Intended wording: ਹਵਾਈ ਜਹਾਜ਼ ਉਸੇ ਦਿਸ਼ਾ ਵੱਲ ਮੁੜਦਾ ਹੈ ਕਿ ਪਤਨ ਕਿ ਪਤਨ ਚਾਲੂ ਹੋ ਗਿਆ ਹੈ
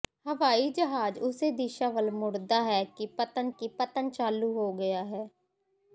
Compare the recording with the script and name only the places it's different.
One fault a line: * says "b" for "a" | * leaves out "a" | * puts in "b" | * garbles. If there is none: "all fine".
all fine